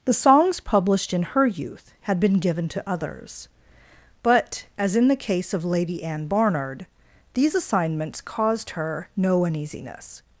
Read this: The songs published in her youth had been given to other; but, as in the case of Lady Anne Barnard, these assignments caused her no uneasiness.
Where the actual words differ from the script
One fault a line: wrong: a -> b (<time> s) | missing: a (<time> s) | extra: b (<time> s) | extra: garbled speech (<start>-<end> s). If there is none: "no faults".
wrong: other -> others (2.9 s)